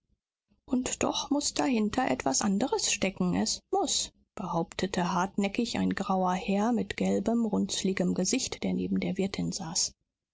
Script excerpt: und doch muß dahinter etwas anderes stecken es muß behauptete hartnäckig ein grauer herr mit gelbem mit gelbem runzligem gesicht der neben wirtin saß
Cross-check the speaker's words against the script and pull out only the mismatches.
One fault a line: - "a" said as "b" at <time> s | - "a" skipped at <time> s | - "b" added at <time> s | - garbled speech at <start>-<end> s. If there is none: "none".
- "mit gelbem" skipped at 7.4 s
- "der" added at 9.0 s